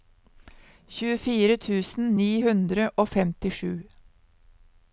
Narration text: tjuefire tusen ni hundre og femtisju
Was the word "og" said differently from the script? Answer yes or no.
no